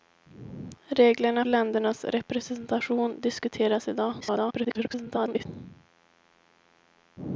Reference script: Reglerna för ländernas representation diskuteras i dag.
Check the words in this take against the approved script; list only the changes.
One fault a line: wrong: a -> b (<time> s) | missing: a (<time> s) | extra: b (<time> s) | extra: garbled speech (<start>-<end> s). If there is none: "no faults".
missing: för (1.4 s)
extra: garbled speech (4.2-5.5 s)